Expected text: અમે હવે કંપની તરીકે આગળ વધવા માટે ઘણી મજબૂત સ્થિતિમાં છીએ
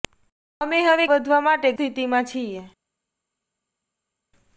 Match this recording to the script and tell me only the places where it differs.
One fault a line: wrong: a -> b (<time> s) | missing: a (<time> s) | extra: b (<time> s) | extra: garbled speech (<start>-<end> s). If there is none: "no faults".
missing: કંપની તરીકે આગળ (1.1 s)
missing: ઘણી મજબૂત (1.7 s)